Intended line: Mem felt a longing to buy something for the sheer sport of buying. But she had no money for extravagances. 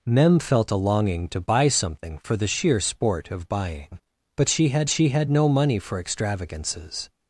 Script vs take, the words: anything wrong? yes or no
yes